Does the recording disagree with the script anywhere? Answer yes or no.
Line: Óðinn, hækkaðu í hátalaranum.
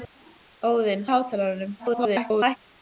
yes